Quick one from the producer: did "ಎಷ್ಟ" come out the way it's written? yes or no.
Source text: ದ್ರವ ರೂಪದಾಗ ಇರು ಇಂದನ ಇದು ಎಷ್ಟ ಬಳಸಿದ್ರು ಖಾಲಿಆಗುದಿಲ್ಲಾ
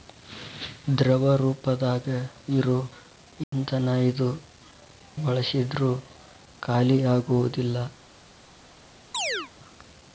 no